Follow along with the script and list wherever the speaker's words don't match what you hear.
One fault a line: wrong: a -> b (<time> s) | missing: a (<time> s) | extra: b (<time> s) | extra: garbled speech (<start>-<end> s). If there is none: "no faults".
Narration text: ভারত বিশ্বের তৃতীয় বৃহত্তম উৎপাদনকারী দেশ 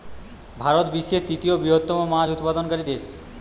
extra: মাছ (2.1 s)